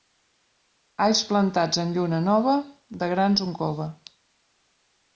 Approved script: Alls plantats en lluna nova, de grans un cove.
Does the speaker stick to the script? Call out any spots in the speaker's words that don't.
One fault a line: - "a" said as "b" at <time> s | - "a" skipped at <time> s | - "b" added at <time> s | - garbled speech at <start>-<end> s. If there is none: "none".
none